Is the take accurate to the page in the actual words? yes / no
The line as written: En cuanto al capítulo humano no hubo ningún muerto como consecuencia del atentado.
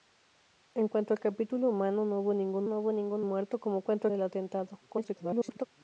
no